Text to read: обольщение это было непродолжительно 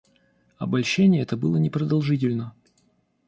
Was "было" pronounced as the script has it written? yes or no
yes